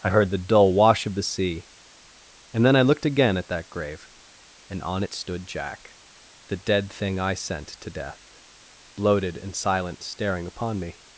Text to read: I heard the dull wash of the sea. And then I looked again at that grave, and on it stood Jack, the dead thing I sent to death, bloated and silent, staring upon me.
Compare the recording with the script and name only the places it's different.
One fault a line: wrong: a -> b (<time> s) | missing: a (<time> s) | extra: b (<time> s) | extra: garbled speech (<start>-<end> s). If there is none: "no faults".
no faults